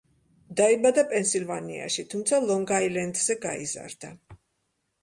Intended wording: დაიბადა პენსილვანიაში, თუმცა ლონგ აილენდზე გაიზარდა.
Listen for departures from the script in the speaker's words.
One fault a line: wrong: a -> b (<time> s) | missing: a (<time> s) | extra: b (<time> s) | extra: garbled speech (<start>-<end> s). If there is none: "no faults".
no faults